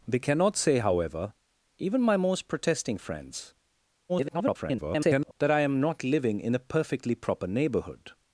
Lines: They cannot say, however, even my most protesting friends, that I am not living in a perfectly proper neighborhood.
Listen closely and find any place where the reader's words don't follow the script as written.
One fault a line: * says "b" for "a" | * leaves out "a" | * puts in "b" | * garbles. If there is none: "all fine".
* garbles